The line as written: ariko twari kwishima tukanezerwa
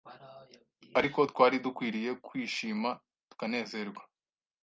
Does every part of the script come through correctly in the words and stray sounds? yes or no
no